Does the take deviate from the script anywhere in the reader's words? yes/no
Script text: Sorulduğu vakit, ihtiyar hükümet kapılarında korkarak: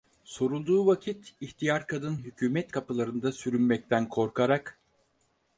yes